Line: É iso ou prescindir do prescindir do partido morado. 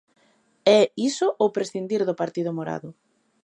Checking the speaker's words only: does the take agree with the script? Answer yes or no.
no